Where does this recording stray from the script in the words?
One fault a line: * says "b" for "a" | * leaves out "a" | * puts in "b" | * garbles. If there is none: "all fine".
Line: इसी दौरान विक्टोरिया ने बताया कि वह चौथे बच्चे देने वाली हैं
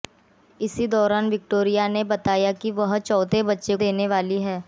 all fine